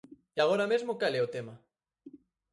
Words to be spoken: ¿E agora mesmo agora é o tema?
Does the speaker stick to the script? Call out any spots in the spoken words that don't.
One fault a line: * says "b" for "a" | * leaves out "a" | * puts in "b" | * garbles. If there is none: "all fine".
* says "cal" for "agora"